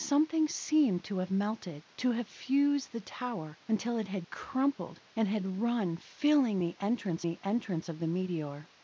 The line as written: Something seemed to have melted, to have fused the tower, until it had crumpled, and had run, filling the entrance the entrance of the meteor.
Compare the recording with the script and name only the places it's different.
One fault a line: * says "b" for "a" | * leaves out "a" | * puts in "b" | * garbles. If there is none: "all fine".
all fine